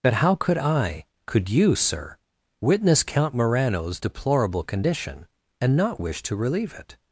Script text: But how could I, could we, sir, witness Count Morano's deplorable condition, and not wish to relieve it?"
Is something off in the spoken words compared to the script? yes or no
yes